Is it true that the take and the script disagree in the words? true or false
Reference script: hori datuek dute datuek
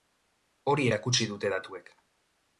true